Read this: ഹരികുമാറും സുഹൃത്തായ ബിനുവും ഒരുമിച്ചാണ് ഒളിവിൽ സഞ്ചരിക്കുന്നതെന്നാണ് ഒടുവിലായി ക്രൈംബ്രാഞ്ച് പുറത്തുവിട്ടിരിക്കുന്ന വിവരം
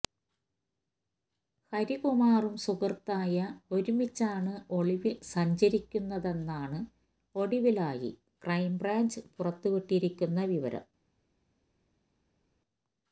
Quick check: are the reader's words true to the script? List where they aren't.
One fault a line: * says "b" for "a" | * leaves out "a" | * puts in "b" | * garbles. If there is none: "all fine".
* leaves out "ബിനുവും"